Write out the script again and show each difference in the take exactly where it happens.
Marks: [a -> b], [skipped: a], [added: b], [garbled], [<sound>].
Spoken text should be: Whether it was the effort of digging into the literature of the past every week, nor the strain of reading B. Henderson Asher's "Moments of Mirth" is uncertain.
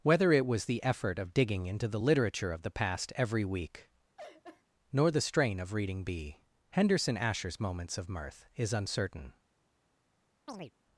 Whether it was the effort of digging into the literature of the past every week, [laugh] nor the strain of reading B. Henderson Asher's "Moments of Mirth" is uncertain. [chirp]